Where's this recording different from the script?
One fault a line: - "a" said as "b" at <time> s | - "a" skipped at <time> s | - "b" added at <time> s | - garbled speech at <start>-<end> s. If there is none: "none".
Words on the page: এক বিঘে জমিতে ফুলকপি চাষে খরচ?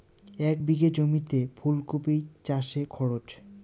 none